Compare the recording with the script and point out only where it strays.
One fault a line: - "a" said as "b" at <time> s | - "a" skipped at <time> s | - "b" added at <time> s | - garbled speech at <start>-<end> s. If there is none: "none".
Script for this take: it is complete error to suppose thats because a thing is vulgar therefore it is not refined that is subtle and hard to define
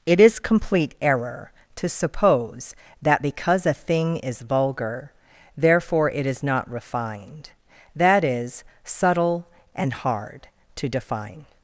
- "thats" said as "that" at 3.0 s